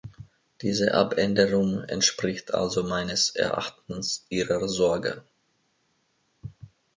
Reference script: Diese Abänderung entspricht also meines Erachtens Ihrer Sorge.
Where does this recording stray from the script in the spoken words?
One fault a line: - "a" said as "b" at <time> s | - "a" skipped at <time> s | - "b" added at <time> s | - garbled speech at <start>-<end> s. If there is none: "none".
none